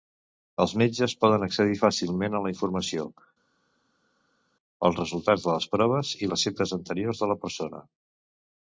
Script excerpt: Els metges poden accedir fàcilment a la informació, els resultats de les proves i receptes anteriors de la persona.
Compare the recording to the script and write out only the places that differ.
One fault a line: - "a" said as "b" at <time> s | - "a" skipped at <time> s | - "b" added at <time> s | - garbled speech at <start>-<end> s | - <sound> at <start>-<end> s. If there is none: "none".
none